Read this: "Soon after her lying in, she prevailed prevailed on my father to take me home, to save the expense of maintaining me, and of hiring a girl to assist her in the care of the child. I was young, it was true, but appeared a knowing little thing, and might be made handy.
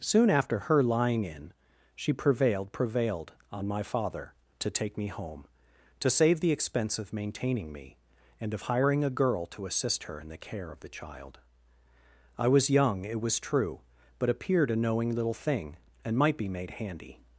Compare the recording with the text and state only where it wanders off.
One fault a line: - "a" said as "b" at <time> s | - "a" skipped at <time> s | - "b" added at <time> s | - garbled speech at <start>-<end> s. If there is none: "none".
none